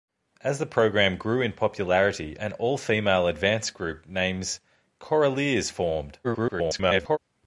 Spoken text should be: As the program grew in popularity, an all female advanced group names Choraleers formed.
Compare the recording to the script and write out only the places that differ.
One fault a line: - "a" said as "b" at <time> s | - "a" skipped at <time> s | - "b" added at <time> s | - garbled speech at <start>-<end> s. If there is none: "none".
- garbled speech at 6.2-7.2 s